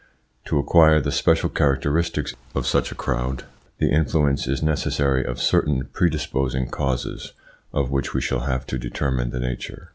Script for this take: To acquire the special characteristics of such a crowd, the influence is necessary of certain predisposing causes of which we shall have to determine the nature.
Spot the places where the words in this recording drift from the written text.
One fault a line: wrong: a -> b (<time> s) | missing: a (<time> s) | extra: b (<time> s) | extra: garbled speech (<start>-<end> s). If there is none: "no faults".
no faults